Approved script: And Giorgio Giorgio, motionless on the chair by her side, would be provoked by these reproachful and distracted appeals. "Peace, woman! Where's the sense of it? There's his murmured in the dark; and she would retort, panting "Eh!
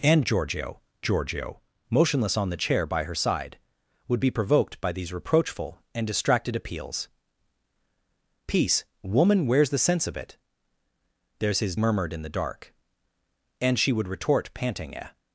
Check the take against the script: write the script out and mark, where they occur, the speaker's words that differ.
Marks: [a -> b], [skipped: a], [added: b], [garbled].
And Giorgio Giorgio, motionless on the chair by her side, would be provoked by these reproachful and distracted appeals. "Peace, woman! Where's the sense of it? There's his murmured in the dark; and she would retort, panting "Eh!